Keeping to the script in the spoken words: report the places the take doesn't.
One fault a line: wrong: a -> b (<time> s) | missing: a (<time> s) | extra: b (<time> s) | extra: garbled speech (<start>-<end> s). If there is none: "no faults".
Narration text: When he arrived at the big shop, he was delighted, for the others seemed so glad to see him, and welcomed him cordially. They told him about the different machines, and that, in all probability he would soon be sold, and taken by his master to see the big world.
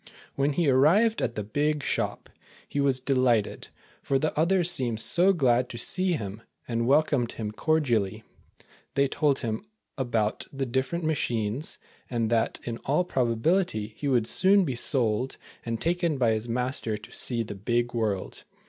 no faults